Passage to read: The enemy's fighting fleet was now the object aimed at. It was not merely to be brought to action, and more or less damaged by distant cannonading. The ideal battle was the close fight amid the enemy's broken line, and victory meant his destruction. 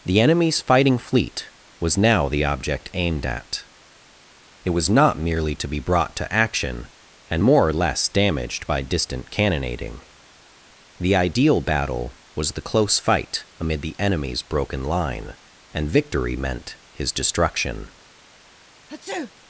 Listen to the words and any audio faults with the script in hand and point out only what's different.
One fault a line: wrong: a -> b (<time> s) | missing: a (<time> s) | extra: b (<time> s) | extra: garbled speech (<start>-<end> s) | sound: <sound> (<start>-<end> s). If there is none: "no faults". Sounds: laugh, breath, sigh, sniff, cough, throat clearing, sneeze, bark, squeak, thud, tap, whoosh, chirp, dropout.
sound: sneeze (18.9-19.3 s)